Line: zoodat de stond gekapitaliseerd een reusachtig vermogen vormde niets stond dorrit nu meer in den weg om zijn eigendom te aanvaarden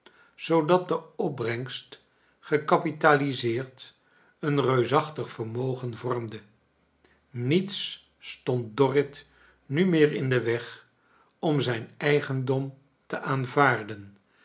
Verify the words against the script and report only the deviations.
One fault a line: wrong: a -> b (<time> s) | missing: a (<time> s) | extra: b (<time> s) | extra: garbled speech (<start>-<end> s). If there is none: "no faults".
wrong: stond -> opbrengst (1.1 s)